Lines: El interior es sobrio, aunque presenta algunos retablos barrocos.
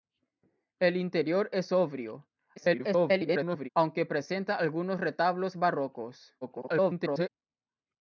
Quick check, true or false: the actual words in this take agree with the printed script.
false